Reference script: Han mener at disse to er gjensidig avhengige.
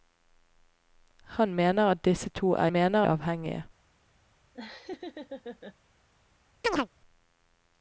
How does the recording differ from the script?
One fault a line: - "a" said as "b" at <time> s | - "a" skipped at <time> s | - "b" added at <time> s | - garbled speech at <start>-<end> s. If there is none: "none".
- "gjensidig" said as "mener" at 2.7 s